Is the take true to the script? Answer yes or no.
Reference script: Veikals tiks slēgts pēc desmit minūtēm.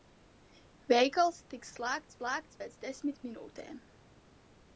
no